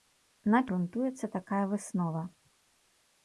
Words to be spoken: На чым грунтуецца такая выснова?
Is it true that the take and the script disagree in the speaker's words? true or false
true